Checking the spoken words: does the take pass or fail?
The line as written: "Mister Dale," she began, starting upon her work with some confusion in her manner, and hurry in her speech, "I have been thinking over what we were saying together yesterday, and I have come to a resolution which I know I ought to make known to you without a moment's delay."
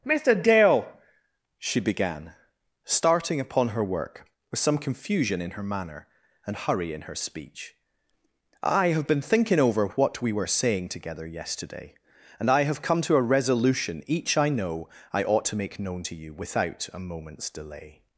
fail